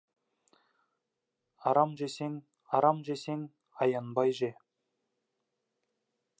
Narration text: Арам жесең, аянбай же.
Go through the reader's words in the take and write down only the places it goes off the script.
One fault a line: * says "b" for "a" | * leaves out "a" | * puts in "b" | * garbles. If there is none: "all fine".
* puts in "арам жесең"